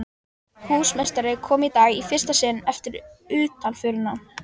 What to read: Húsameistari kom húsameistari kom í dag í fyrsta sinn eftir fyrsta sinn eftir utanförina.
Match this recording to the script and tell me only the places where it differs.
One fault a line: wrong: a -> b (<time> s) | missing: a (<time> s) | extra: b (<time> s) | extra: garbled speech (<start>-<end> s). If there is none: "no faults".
missing: húsameistari kom (1.7 s)
missing: fyrsta sinn eftir (3.0 s)